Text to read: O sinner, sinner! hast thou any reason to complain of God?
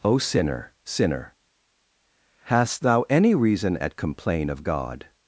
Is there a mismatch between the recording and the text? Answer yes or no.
yes